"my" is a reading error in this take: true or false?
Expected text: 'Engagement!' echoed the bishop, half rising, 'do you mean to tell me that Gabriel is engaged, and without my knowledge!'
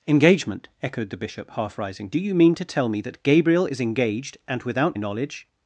true